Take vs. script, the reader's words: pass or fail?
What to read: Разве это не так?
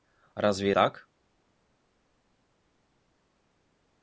fail